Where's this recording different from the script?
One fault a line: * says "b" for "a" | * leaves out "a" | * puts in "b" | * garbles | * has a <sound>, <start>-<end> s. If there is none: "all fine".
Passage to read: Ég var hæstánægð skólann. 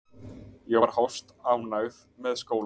* puts in "með"